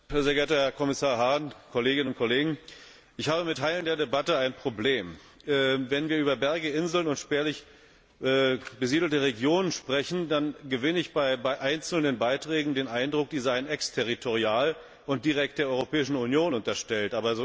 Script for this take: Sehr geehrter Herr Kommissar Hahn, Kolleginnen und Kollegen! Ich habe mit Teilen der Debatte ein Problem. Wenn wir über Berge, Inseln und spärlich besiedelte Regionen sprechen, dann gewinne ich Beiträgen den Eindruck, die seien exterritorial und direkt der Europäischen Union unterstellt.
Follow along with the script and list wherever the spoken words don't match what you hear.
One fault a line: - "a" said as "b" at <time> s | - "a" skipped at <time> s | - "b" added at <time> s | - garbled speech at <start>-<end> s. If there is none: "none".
- "bei einzelnen" added at 11.1 s